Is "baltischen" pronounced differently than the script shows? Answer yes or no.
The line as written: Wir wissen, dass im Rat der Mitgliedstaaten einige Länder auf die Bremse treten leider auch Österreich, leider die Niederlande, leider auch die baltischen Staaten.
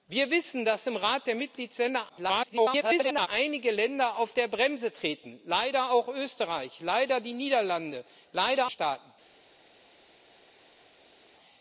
yes